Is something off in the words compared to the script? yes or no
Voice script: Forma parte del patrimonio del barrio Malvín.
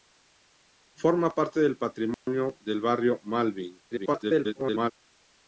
yes